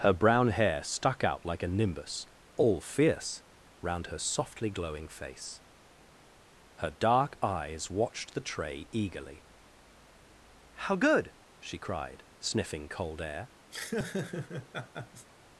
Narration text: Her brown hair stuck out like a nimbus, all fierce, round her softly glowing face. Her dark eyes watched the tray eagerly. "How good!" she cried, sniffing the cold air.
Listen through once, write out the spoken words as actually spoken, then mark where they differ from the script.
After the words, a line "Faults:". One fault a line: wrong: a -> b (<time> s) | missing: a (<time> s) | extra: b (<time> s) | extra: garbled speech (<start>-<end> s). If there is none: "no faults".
Her brown hair stuck out like a nimbus, all fierce, round her softly glowing face. Her dark eyes watched the tray eagerly. "How good!" she cried, sniffing cold air.
Faults:
missing: the (12.9 s)